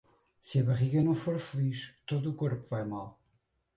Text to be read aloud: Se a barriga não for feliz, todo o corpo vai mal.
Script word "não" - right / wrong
right